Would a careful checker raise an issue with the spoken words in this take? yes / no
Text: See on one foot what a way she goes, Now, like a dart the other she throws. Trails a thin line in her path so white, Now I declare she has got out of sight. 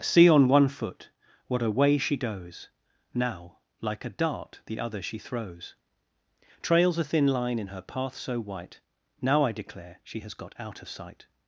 no